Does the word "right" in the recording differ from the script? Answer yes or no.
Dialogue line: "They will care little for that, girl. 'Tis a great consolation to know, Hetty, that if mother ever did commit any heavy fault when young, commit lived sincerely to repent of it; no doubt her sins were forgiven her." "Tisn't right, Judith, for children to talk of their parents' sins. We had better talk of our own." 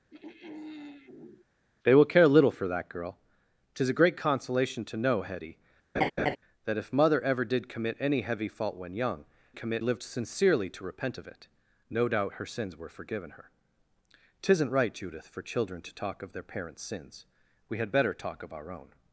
no